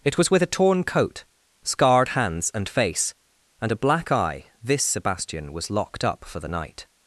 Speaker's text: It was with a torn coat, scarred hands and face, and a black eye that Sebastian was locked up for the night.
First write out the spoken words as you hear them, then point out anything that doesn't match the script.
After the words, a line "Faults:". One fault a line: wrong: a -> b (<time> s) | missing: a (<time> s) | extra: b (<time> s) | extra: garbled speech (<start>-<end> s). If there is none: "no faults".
It was with a torn coat, scarred hands and face, and a black eye this Sebastian was locked up for the night.
Faults:
wrong: that -> this (4.6 s)